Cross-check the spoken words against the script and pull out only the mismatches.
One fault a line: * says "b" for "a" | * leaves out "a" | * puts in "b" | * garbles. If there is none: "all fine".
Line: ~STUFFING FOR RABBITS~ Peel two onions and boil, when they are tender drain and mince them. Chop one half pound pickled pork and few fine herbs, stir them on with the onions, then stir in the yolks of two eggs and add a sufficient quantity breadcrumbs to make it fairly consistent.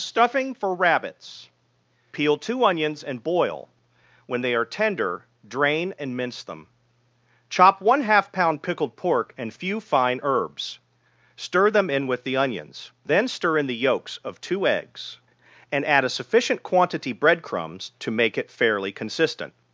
* says "in" for "on"